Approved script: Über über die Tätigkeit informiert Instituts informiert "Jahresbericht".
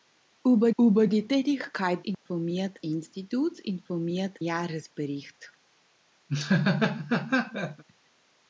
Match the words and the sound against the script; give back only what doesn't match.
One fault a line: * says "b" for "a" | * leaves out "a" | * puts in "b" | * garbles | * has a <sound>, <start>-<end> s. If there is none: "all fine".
* has a dropout, 2.1-2.3 s
* has a laugh, 6.3-7.8 s